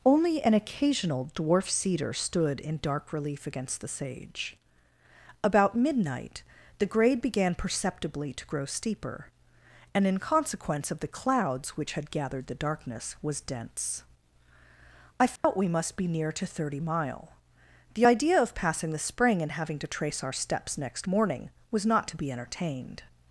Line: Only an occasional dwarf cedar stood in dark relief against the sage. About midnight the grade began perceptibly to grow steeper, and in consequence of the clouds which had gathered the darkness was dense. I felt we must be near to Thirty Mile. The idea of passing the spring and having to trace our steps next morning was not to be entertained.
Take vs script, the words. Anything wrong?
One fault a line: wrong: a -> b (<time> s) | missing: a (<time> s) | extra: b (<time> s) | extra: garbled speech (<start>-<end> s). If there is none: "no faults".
no faults